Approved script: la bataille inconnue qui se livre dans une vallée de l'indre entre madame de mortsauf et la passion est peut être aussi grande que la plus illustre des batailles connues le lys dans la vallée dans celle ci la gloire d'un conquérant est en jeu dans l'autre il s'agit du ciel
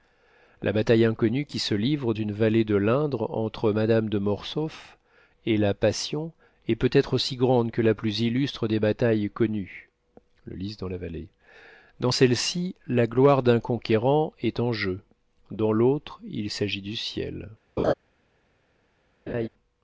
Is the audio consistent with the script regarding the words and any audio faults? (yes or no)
no